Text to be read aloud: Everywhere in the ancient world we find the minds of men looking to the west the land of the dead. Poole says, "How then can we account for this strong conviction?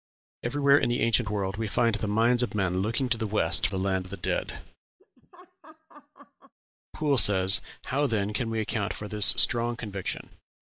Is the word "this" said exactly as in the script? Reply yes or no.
yes